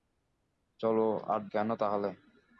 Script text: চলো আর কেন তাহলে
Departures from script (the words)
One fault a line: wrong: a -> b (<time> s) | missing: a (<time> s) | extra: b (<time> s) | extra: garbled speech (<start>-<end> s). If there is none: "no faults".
no faults